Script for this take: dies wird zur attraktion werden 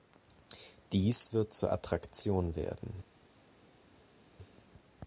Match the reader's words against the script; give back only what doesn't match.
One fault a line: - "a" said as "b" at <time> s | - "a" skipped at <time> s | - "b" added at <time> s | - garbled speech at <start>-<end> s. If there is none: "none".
none